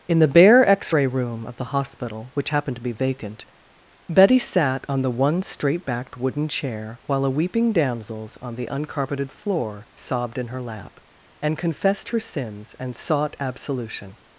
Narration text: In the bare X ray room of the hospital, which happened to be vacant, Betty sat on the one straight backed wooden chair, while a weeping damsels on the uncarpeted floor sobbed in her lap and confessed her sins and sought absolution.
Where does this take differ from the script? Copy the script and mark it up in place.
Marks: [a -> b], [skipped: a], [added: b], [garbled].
In the bare X ray room of the hospital, which happened to be vacant, Betty sat on the one straight backed wooden chair, while a weeping damsels on the uncarpeted floor sobbed in her lap and confessed her sins and sought absolution.